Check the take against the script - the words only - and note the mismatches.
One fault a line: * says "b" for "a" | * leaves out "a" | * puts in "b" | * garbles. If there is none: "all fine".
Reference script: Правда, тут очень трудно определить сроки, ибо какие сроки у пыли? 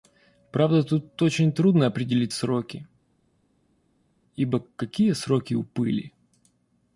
all fine